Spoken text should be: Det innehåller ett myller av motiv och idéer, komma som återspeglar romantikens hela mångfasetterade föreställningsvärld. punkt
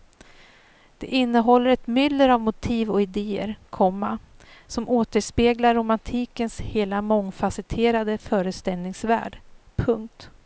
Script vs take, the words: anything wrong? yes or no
no